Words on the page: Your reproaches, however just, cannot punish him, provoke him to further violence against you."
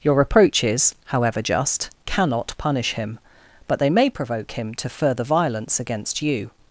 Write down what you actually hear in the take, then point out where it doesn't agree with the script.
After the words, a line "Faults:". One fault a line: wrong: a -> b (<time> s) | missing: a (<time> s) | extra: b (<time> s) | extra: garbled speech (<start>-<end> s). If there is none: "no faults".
Your reproaches, however just, cannot punish him, but they may provoke him to further violence against you."
Faults:
extra: but they may (3.7 s)